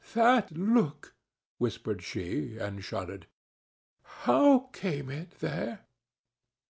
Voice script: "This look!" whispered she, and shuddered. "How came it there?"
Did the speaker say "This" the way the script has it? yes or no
no